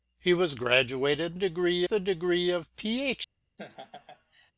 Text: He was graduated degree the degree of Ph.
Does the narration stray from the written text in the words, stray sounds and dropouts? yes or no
yes